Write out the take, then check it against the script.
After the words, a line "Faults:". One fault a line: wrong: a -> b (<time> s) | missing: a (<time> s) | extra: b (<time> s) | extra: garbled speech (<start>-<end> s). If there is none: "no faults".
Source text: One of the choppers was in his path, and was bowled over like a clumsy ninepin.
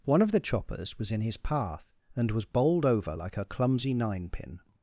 One of the choppers was in his path, and was bowled over like a clumsy ninepin.
Faults:
no faults